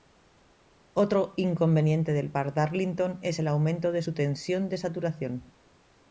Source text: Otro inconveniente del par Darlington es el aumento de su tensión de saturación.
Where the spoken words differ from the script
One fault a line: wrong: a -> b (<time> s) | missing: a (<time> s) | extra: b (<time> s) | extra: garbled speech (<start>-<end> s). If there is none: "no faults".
no faults